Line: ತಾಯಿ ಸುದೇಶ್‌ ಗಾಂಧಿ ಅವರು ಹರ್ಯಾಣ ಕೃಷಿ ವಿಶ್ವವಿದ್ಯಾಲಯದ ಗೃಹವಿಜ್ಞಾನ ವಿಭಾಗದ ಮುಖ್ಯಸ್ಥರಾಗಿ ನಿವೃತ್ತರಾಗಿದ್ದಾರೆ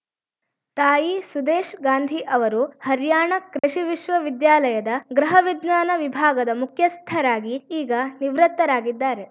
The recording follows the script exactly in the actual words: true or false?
false